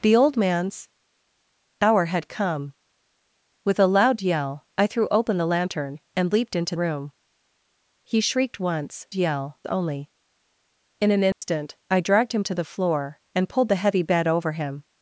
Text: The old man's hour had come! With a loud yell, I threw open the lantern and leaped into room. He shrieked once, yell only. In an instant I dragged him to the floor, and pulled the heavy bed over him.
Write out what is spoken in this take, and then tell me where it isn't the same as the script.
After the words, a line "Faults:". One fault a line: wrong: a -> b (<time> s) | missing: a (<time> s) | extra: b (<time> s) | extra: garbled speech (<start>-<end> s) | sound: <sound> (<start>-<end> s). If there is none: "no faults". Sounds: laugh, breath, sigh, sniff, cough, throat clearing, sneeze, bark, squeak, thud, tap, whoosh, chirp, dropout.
The old man's hour had come! With a loud yell, I threw open the lantern and leaped into room. He shrieked once, yell only. In an instant I dragged him to the floor, and pulled the heavy bed over him.
Faults:
sound: dropout (11.3-11.4 s)